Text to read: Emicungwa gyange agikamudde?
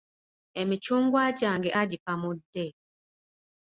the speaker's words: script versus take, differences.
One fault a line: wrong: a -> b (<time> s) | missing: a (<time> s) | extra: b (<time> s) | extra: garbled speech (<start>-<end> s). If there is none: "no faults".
no faults